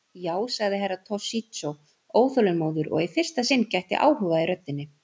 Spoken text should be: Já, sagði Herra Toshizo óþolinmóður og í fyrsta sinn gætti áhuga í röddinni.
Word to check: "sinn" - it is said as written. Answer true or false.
true